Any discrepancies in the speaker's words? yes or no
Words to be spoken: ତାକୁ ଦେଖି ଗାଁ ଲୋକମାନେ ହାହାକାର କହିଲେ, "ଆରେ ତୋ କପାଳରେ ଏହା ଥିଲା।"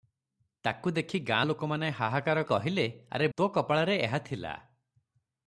no